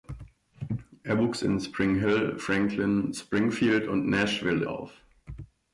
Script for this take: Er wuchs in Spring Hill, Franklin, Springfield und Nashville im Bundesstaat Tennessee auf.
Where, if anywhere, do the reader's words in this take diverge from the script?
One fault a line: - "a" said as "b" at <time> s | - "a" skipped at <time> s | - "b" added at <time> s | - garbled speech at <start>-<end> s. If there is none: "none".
- "im Bundesstaat Tennessee" skipped at 4.6 s